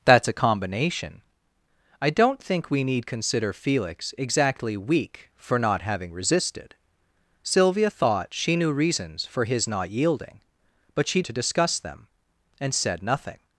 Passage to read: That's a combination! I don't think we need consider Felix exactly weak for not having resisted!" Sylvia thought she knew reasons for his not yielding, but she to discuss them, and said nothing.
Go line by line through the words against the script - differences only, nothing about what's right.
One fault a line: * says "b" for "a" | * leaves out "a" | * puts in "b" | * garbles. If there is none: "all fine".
all fine